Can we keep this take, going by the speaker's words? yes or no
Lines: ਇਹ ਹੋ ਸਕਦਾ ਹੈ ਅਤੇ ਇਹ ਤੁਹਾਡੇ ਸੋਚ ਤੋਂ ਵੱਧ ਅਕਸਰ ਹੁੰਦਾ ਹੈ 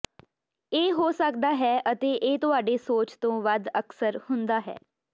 yes